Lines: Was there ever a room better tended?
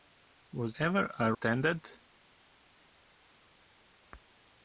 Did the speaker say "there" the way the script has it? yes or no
no